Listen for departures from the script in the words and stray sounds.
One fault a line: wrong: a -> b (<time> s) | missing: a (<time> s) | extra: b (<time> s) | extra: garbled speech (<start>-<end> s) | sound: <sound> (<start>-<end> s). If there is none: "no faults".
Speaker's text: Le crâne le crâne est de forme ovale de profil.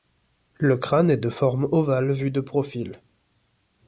missing: le crâne (1.1 s)
extra: vu (2.1 s)